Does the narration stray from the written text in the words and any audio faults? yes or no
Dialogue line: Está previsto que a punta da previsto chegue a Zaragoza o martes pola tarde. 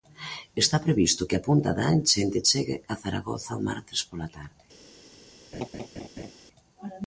yes